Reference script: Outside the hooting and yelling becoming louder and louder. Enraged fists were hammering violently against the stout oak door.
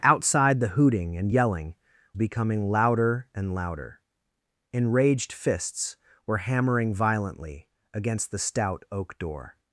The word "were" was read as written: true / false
true